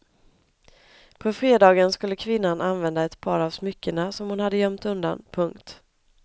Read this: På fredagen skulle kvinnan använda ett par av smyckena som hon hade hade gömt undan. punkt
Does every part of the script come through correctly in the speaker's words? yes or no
no